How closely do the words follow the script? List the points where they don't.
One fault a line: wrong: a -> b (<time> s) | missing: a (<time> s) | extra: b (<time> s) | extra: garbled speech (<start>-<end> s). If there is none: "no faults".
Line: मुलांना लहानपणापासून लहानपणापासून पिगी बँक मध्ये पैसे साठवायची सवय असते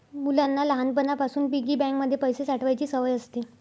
missing: लहानपणापासून (1.5 s)